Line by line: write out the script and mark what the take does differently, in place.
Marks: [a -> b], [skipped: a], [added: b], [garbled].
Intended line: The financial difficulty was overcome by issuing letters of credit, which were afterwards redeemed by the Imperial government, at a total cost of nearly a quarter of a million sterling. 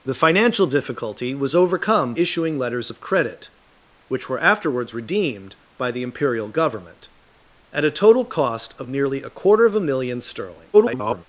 The financial difficulty was overcome [skipped: by] issuing letters of credit, which were afterwards redeemed by the Imperial government, at a total cost of nearly a quarter of a million sterling. [garbled]